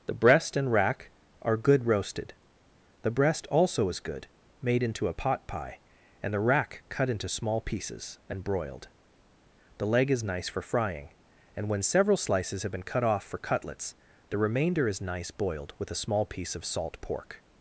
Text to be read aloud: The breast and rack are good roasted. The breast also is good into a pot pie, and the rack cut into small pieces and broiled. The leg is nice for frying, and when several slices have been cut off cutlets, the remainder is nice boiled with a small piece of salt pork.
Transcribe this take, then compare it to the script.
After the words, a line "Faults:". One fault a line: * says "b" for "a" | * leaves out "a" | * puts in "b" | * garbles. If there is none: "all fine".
The breast and rack are good roasted. The breast also is good made into a pot pie, and the rack cut into small pieces and broiled. The leg is nice for frying, and when several slices have been cut off for cutlets, the remainder is nice boiled with a small piece of salt pork.
Faults:
* puts in "made"
* puts in "for"